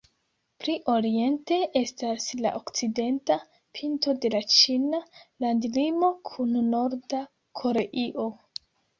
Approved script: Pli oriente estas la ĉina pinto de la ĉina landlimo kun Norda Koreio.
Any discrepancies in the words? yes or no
yes